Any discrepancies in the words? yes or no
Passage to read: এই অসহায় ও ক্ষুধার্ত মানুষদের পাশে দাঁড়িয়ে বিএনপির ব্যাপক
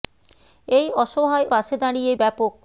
yes